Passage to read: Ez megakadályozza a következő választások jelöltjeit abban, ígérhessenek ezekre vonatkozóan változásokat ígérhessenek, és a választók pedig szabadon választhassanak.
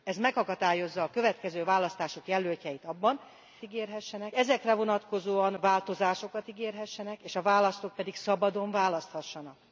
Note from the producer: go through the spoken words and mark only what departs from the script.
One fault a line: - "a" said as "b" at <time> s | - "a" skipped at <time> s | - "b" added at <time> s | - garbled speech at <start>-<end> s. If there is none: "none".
none